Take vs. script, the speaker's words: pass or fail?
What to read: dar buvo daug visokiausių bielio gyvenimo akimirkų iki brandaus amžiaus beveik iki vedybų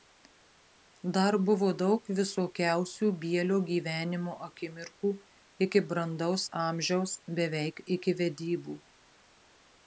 pass